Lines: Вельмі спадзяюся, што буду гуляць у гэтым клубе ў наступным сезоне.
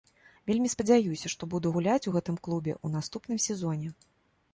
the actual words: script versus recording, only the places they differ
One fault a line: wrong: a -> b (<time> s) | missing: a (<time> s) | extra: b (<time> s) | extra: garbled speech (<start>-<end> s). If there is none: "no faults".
no faults